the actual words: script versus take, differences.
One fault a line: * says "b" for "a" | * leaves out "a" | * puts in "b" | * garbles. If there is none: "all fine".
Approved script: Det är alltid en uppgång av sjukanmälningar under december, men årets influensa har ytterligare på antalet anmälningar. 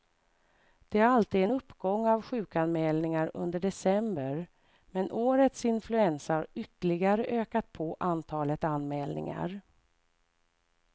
* puts in "ökat"